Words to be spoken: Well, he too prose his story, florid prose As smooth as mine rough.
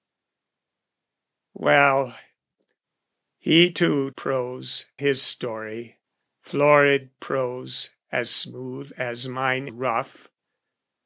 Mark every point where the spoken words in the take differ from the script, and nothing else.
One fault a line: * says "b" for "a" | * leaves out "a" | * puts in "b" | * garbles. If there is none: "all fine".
all fine